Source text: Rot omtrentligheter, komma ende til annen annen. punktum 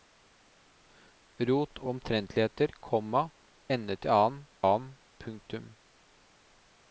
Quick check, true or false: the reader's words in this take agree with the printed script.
true